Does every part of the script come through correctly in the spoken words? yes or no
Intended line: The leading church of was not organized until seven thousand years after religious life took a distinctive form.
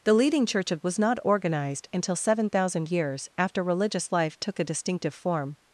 yes